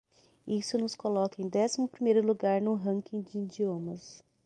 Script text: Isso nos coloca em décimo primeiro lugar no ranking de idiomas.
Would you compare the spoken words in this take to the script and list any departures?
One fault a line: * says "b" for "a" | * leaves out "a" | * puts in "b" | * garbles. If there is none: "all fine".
all fine